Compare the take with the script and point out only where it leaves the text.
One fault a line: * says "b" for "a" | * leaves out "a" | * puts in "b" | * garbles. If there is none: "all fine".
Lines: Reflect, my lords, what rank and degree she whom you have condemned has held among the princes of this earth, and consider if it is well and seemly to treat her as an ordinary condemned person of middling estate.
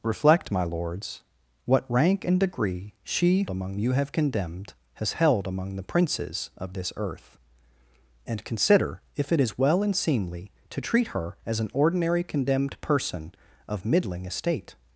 * says "among" for "whom"